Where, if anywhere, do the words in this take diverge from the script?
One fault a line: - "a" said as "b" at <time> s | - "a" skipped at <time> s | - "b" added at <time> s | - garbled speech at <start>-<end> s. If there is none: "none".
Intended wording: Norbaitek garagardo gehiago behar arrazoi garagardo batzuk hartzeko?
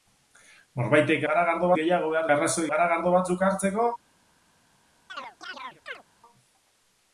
none